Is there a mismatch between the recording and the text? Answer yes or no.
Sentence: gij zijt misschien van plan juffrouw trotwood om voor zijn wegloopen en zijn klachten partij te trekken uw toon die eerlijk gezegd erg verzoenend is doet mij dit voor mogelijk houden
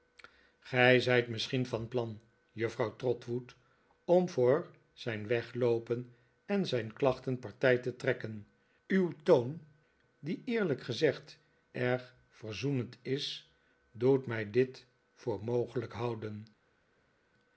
no